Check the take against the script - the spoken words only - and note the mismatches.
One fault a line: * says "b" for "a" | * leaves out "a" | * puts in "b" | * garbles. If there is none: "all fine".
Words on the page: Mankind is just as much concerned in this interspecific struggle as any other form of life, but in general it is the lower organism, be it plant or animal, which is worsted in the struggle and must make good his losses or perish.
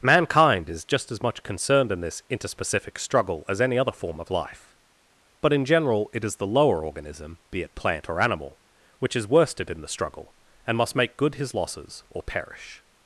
all fine